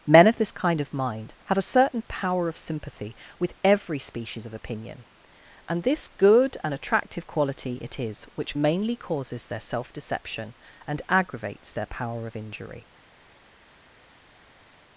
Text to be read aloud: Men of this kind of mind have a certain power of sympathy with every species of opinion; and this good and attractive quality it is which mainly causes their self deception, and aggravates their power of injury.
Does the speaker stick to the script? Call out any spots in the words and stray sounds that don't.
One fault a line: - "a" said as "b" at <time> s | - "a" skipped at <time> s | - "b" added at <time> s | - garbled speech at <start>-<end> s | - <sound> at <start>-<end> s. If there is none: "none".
none